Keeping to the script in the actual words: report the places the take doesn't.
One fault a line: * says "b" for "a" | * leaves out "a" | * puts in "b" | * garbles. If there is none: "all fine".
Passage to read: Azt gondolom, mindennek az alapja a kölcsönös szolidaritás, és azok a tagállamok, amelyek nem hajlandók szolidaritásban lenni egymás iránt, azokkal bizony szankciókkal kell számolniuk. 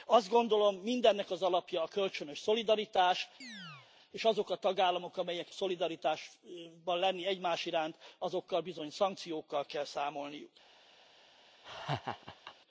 * leaves out "nem hajlandók"